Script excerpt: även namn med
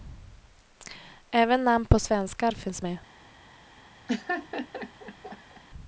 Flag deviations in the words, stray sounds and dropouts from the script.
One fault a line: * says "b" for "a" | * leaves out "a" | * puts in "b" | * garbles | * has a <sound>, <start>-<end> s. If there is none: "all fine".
* puts in "på svenskar finns"
* has a laugh, 4.1-5.6 s